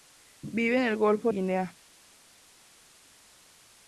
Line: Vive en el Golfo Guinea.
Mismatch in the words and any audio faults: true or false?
false